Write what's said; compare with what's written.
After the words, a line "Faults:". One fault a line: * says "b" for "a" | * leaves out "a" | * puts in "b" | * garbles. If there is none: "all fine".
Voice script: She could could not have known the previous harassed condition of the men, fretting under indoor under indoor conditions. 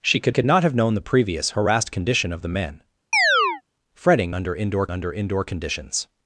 She could could not have known the previous harassed condition of the men, fretting under indoor under indoor conditions.
Faults:
all fine